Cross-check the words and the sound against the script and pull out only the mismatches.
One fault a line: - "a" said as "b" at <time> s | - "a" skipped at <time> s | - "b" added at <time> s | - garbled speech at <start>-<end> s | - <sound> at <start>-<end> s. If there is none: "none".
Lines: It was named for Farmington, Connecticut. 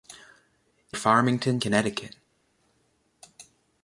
- "was named for" skipped at 1.0 s